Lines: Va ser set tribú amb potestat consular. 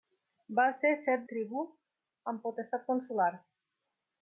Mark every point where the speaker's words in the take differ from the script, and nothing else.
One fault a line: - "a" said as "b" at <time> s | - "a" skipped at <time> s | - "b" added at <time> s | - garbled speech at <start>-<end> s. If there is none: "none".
none